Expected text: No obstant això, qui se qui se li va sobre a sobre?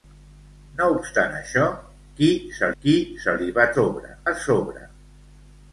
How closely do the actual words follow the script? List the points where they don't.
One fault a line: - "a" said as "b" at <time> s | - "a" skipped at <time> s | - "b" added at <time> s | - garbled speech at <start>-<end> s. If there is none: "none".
none